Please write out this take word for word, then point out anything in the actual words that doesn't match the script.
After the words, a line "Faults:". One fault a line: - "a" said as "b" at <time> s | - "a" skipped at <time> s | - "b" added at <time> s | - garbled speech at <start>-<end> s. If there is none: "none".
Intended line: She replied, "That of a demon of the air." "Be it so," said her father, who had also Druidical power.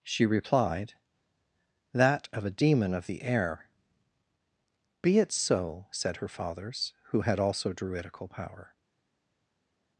She replied, "That of a demon of the air." "Be it so," said her fathers, who had also Druidical power.
Faults:
- "father" said as "fathers" at 6.3 s